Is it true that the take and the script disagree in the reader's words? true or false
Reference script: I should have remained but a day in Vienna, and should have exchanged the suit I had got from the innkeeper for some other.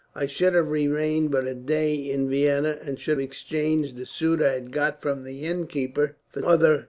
true